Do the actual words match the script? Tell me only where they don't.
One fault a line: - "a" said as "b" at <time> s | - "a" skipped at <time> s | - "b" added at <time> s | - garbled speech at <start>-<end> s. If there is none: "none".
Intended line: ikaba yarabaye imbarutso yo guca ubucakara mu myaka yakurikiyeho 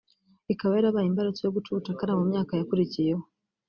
none